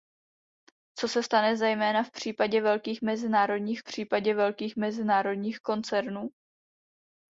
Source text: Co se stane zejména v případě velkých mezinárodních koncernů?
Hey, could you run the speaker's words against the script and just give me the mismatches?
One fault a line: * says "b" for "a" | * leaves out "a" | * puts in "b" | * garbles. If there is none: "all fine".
* puts in "případě velkých mezinárodních"